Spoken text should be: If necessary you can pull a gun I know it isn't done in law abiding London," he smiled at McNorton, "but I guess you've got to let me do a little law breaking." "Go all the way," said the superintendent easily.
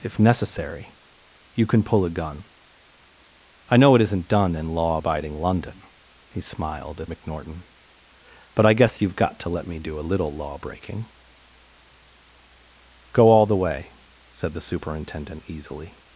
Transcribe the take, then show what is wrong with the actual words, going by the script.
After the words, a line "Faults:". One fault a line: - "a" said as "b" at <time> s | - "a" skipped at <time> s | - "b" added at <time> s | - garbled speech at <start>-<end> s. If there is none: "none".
If necessary you can pull a gun I know it isn't done in law abiding London," he smiled at McNorton, "but I guess you've got to let me do a little law breaking." "Go all the way," said the superintendent easily.
Faults:
none